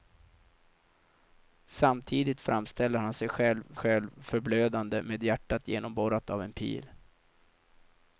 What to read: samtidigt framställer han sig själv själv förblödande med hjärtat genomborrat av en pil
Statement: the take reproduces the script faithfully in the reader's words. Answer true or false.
true